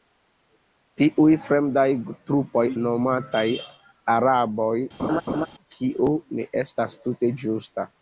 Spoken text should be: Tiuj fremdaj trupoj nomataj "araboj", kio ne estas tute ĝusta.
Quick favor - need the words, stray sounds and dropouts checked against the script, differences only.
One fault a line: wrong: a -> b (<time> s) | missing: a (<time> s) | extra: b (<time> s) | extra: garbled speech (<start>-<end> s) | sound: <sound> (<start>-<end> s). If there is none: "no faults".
sound: laugh (5.0-5.5 s)